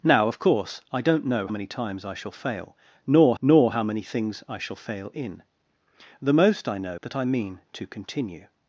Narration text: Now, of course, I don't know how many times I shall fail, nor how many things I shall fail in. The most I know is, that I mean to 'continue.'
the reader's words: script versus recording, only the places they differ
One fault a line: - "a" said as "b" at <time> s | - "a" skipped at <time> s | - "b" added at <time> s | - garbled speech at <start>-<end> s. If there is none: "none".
- "how" skipped at 1.5 s
- "nor" added at 3.4 s
- "is" skipped at 7.0 s